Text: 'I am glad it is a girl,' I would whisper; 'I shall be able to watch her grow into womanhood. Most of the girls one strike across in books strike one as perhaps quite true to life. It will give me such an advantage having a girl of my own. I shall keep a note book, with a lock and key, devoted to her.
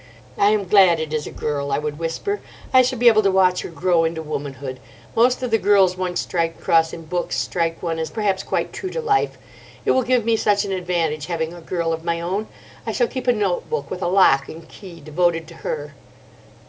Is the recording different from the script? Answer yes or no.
no